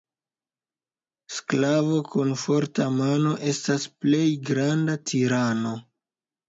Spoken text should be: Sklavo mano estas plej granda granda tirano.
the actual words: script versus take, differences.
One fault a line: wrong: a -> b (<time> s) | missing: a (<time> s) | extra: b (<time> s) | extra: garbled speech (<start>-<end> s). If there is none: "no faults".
extra: kun forta (2.1 s)
missing: granda (5.0 s)